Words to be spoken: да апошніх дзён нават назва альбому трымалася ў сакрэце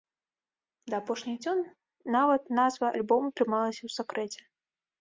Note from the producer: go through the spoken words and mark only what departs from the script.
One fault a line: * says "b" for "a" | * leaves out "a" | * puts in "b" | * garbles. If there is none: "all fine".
all fine